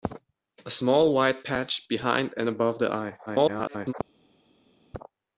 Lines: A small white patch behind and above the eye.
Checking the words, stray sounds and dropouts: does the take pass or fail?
fail